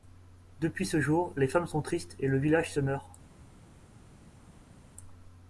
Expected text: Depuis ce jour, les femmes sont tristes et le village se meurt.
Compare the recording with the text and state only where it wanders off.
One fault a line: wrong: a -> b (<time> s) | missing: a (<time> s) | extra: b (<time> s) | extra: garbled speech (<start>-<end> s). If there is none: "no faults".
no faults